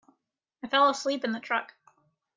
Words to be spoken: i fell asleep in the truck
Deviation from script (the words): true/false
false